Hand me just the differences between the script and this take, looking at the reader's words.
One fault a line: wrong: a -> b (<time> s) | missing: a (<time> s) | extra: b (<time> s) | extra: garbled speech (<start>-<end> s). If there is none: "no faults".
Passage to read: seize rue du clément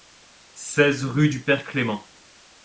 extra: père (1.4 s)